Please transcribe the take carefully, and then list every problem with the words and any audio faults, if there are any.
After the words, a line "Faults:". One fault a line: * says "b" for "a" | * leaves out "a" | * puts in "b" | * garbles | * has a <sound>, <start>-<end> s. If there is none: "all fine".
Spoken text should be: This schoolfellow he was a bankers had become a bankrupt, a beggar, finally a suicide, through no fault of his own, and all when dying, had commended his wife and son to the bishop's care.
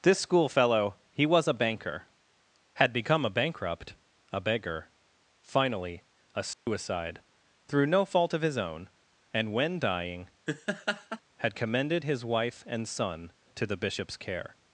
This schoolfellow he was a banker had become a bankrupt, a beggar, finally a suicide, through no fault of his own, and when dying, had commended his wife and son to the bishop's care.
Faults:
* says "banker" for "bankers"
* has a dropout, 6.5-6.7 s
* leaves out "all"
* has a laugh, 10.5-11.2 s